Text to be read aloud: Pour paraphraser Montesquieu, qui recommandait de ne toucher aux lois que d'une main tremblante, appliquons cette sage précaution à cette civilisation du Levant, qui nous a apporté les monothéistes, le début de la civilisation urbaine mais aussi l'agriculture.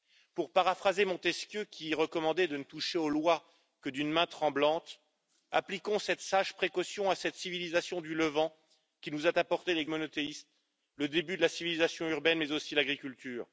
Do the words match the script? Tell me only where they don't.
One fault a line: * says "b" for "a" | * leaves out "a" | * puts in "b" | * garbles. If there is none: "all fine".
all fine